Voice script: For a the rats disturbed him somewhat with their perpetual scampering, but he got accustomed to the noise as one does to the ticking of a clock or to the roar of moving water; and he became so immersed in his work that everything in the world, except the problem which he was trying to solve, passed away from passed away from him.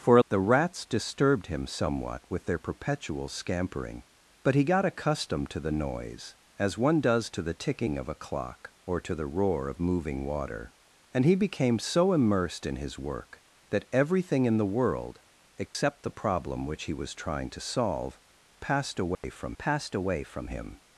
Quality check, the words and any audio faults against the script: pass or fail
fail